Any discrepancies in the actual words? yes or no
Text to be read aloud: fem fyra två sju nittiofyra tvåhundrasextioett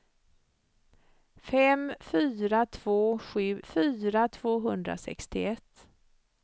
yes